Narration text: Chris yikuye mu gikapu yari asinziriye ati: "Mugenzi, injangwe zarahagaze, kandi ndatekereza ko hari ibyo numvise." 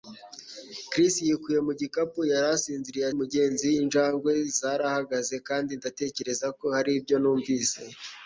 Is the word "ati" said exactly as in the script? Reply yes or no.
no